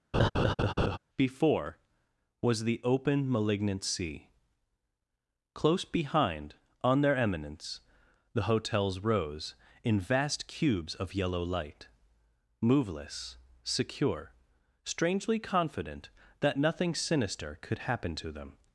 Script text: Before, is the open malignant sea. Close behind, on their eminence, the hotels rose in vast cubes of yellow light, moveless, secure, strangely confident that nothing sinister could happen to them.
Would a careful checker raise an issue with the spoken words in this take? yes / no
yes